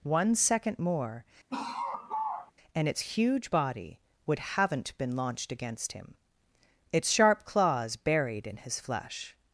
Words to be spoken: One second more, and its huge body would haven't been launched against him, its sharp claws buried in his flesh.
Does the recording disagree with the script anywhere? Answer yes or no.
no